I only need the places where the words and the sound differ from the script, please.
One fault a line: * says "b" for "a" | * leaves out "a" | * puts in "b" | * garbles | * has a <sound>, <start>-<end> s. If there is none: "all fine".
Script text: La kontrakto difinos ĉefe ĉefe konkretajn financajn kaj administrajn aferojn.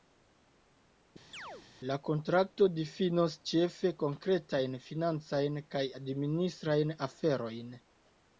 * has a chirp, 1.3-1.7 s
* leaves out "ĉefe"